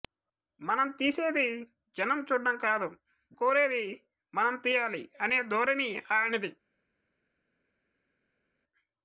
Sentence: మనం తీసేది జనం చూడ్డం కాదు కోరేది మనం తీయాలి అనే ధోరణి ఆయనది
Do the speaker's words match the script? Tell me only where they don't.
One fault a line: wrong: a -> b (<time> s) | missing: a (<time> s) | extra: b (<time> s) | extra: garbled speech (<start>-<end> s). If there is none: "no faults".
no faults